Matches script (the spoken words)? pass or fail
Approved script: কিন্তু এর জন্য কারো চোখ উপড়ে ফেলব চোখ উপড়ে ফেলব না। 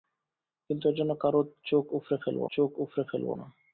pass